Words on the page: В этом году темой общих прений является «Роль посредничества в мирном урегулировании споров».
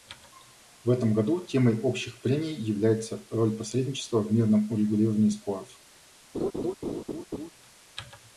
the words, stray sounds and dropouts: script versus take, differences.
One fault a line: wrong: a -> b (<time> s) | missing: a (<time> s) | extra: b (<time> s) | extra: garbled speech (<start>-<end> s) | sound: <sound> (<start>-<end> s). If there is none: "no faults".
sound: laugh (6.3-7.5 s)